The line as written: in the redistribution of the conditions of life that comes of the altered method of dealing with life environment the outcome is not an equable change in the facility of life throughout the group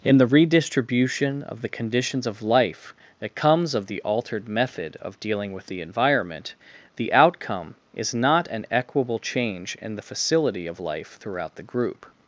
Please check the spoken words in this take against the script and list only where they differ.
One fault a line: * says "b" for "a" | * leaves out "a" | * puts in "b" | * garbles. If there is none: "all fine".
* says "the" for "life"